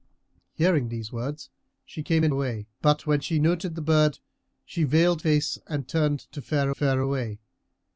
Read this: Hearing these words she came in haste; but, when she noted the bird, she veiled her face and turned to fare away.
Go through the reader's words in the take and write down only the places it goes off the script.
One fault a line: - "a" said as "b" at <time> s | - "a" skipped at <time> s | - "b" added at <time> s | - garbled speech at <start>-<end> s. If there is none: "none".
- "haste" said as "away" at 2.3 s
- "her" skipped at 5.2 s
- "fare" added at 6.7 s